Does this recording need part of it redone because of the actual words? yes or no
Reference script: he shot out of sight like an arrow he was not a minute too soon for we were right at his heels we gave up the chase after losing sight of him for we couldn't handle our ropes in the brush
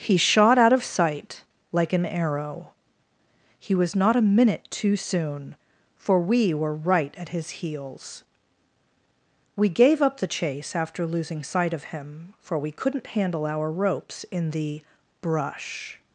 no